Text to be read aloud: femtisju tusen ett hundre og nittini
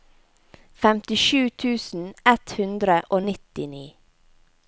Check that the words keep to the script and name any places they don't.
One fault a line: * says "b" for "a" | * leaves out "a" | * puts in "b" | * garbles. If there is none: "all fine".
all fine